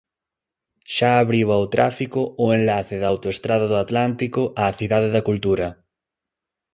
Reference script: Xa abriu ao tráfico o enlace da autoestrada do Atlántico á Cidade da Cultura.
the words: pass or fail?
pass